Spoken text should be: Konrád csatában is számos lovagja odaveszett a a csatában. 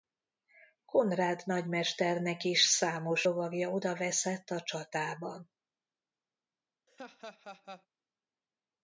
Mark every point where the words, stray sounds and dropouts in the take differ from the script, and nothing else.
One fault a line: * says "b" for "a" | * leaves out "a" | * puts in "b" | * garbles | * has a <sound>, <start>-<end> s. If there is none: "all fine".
* says "nagymesternek" for "csatában"
* leaves out "a"
* has a laugh, 6.9-7.9 s